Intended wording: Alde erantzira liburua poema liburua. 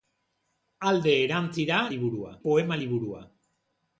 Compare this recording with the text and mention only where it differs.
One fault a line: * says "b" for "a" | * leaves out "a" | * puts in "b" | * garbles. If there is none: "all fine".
all fine